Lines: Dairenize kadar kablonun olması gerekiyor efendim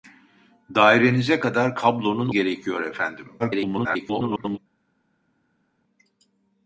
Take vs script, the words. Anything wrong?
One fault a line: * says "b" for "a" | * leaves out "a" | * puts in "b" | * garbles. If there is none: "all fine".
* leaves out "olması"
* garbles